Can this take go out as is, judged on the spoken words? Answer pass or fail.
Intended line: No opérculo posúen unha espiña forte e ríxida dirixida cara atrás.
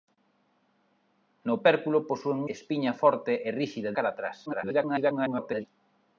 fail